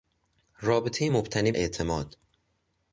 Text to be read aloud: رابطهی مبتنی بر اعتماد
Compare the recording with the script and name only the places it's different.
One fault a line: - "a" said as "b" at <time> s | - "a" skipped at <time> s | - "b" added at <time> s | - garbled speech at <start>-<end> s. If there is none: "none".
- "بر" skipped at 1.5 s